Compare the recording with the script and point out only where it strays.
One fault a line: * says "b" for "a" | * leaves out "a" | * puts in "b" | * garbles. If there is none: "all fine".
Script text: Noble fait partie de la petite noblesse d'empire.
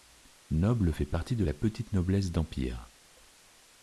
all fine